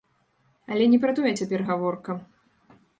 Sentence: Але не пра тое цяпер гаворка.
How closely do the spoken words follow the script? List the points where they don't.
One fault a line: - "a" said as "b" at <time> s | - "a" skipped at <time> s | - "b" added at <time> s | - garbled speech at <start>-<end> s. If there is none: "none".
none